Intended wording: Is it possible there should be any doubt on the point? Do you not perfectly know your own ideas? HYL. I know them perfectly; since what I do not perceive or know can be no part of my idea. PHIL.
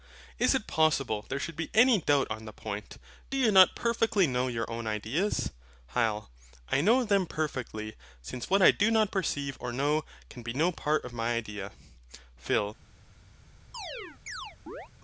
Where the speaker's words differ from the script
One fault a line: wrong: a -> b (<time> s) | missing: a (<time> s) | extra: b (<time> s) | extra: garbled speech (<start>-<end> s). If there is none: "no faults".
no faults